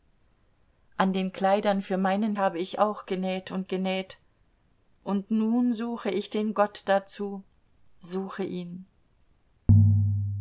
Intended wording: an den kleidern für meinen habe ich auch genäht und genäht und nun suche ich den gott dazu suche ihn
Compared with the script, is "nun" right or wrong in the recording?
right